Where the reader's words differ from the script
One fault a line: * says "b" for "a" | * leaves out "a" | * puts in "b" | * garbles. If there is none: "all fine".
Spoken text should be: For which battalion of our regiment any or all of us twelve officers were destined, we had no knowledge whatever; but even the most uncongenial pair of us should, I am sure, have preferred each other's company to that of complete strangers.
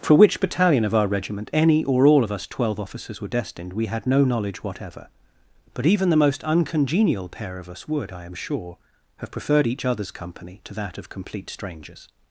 * says "would" for "should"